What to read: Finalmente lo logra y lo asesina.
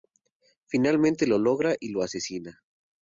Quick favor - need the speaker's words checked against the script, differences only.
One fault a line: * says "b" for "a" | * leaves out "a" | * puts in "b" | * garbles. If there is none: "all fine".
all fine